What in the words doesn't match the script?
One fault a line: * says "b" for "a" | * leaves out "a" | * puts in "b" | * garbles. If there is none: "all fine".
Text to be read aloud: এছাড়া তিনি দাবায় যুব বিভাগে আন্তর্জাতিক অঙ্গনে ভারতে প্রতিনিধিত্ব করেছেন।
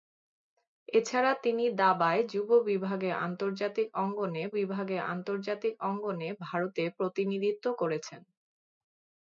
* puts in "বিভাগে আন্তর্জাতিক অঙ্গনে"